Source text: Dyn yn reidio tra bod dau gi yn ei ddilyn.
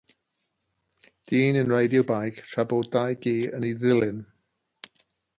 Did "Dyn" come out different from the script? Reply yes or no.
no